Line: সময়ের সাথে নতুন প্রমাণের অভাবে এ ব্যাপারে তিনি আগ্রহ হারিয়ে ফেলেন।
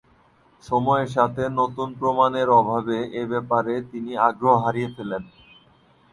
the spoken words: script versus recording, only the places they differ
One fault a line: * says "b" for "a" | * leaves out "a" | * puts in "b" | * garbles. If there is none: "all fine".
all fine